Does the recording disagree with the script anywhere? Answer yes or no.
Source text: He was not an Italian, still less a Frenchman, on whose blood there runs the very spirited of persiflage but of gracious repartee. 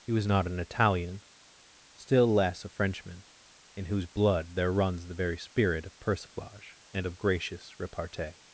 yes